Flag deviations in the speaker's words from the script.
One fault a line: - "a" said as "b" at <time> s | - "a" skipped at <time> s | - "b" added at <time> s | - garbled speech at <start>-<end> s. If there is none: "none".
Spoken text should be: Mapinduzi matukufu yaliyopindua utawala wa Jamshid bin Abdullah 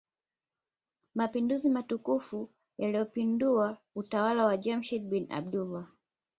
none